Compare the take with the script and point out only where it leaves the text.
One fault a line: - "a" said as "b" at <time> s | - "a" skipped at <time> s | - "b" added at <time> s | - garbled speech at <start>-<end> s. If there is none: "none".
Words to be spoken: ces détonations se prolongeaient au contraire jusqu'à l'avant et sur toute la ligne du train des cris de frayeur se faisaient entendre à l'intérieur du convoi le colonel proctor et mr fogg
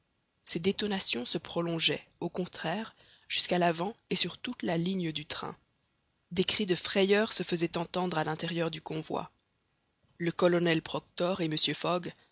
none